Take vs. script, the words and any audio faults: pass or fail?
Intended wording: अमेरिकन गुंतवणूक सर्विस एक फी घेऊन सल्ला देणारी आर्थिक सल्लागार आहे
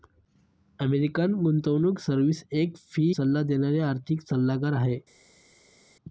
fail